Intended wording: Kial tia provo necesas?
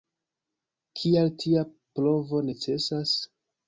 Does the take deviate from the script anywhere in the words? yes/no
no